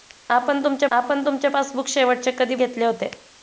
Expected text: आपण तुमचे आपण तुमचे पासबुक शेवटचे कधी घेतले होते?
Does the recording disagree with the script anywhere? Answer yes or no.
no